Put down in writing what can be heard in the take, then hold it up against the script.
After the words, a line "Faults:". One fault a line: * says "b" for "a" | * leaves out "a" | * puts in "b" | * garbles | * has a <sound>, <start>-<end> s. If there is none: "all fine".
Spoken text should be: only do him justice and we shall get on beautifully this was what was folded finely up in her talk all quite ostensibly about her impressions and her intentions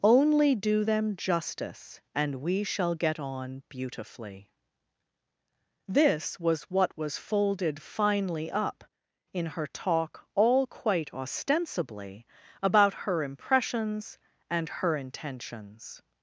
only do them justice and we shall get on beautifully this was what was folded finely up in her talk all quite ostensibly about her impressions and her intentions
Faults:
* says "them" for "him"